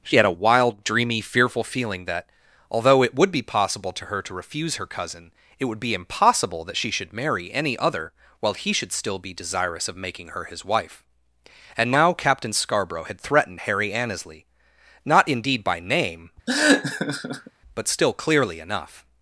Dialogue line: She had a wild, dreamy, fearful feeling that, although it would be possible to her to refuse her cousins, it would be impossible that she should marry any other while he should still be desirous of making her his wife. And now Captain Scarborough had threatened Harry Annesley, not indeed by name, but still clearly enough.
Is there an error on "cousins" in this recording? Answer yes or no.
yes